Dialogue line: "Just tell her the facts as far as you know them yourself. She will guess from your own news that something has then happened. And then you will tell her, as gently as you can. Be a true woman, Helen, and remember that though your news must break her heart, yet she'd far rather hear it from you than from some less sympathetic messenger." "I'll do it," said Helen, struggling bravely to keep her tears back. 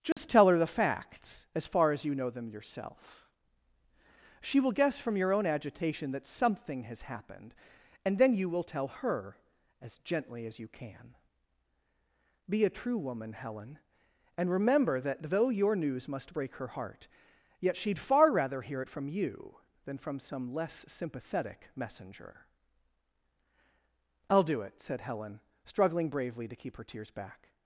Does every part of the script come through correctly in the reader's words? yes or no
no